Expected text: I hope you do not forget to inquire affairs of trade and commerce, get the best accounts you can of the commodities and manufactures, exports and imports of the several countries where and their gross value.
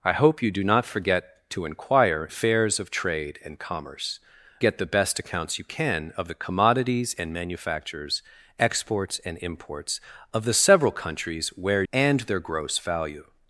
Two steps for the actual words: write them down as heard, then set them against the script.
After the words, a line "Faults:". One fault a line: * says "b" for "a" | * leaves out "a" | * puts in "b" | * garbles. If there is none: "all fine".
I hope you do not forget to inquire affairs of trade and commerce, get the best accounts you can of the commodities and manufactures, exports and imports of the several countries where and their gross value.
Faults:
all fine